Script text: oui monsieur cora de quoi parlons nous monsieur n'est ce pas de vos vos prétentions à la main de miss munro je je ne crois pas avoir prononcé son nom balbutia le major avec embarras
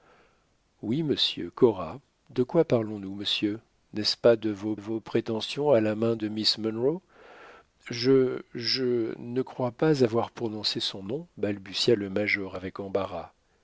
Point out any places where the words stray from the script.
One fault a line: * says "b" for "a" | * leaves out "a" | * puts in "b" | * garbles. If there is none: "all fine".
all fine